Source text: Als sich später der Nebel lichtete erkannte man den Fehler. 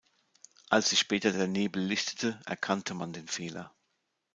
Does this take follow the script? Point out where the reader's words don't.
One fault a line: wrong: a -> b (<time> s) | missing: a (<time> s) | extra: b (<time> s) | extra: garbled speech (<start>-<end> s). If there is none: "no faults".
no faults